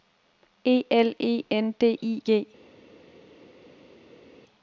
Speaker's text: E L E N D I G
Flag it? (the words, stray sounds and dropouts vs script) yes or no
no